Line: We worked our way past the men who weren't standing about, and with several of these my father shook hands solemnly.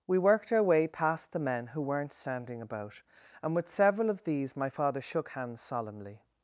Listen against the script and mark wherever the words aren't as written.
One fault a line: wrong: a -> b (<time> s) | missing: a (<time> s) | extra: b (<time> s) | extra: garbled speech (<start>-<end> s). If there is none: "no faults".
no faults